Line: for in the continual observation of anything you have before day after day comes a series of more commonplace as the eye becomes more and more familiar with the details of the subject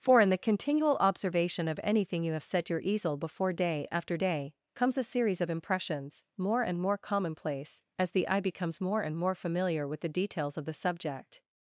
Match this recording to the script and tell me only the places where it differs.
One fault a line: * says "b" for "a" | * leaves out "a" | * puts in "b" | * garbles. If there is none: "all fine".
* puts in "set your easel"
* puts in "impressions more and"